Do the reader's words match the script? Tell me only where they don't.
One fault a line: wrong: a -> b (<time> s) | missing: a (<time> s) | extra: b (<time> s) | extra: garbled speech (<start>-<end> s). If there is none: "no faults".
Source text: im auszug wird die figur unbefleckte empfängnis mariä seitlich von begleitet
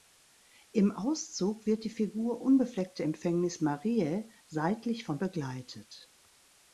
no faults